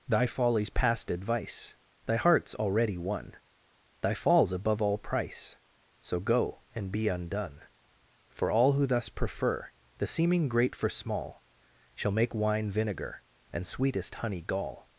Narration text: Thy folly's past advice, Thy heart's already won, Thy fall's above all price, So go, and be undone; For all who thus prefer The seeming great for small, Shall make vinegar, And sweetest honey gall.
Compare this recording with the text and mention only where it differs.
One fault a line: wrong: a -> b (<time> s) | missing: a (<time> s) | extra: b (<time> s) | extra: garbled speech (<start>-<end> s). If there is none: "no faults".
extra: wine (12.3 s)